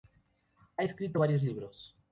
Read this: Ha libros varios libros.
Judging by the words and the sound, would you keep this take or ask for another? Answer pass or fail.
fail